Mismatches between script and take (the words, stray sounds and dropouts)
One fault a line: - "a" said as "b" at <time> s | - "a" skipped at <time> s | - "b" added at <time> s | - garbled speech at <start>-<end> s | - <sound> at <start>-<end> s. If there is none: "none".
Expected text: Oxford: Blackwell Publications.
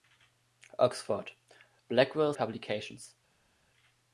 none